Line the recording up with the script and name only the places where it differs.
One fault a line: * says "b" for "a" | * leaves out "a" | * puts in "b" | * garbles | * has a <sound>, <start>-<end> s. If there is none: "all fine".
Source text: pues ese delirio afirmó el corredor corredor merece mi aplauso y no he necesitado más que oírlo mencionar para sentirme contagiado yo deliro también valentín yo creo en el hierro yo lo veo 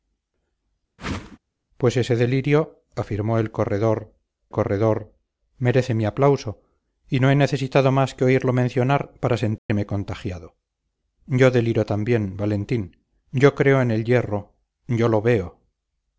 * has a whoosh, 1.0-1.4 s
* has a dropout, 9.6-9.7 s